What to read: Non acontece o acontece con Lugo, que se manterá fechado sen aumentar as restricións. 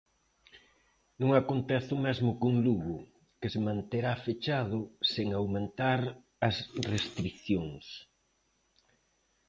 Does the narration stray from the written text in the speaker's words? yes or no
yes